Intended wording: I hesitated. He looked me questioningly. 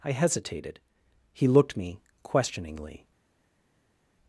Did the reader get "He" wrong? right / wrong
right